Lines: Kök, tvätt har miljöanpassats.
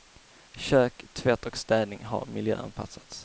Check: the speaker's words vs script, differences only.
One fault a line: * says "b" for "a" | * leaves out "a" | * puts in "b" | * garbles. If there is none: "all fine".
* puts in "och städning"